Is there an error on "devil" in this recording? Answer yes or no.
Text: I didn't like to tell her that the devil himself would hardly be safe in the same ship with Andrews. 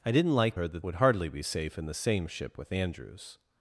yes